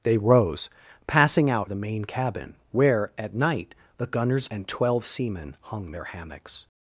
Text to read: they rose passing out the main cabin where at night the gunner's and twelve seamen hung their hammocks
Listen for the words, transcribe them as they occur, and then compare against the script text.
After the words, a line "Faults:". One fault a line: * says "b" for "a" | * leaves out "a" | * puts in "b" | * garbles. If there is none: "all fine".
they rose passing out the main cabin where at night the gunner's and twelve seamen hung their hammocks
Faults:
all fine